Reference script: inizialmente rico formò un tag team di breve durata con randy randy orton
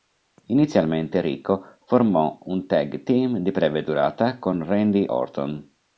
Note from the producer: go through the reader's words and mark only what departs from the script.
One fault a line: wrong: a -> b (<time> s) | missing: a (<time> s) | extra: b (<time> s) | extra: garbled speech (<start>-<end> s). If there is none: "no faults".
missing: randy (5.0 s)